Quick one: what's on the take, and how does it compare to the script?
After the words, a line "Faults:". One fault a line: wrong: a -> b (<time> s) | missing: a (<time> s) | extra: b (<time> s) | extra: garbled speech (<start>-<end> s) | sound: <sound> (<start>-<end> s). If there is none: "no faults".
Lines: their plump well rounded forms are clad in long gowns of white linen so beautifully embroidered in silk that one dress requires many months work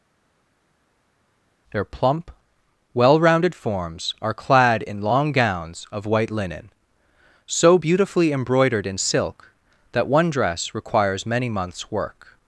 their plump well rounded forms are clad in long gowns of white linen so beautifully embroidered in silk that one dress requires many months work
Faults:
no faults